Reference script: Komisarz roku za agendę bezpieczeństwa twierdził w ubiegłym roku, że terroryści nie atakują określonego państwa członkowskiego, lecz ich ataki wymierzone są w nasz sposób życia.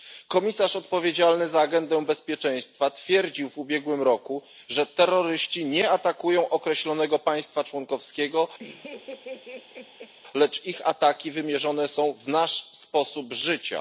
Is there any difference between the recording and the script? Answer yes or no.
yes